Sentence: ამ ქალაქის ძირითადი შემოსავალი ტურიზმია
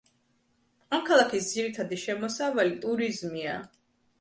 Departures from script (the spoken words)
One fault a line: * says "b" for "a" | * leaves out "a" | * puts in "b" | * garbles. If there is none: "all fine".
all fine